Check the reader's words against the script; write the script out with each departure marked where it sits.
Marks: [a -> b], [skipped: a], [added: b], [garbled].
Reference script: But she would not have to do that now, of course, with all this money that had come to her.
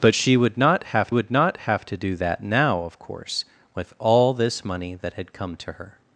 But she would not have [added: would not have] to do that now, of course, with all this money that had come to her.